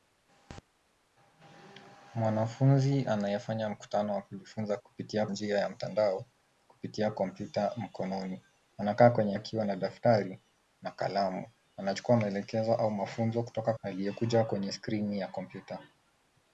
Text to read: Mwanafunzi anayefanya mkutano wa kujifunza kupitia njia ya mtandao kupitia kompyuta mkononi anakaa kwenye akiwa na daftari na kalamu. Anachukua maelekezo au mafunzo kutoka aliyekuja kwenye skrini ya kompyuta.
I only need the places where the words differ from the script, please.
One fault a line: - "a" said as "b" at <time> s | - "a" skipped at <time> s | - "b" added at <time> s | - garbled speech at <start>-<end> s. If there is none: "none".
none